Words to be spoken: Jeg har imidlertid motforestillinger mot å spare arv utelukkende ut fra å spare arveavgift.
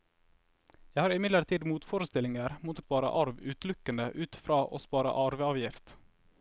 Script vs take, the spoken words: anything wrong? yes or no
no